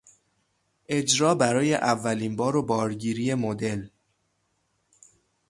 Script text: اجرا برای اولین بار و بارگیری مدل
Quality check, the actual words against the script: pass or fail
pass